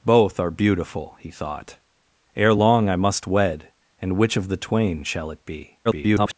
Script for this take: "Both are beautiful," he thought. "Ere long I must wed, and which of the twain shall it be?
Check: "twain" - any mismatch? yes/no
no